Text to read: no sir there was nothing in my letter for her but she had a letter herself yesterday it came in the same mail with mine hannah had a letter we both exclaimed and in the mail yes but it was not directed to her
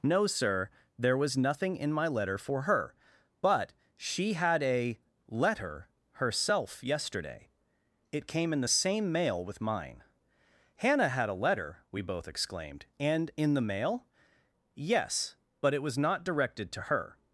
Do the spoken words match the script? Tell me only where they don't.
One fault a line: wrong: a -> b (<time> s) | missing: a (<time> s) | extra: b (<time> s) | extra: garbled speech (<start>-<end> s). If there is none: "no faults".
no faults